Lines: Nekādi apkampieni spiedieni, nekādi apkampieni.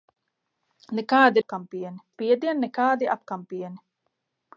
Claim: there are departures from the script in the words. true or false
false